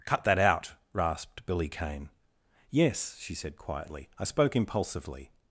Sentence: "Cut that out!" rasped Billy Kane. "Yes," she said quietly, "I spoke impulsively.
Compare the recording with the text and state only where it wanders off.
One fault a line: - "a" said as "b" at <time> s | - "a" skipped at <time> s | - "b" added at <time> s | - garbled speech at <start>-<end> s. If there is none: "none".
none